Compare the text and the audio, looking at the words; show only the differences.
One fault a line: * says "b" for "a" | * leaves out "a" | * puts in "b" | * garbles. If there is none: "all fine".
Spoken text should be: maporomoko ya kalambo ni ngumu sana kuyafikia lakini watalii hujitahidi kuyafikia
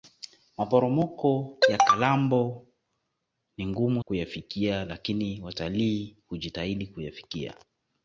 * leaves out "sana"